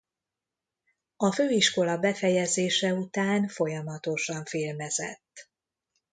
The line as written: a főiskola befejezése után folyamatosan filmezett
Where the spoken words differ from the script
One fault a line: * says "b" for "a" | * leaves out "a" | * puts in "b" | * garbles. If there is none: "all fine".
all fine